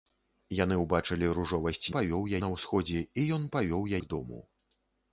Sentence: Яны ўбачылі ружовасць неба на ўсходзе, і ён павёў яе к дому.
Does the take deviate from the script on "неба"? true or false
true